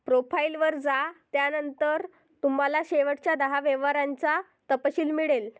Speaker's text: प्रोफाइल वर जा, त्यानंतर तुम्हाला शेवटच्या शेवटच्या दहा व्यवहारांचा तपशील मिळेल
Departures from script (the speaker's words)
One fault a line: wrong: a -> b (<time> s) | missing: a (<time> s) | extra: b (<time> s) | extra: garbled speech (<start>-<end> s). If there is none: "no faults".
missing: शेवटच्या (3.4 s)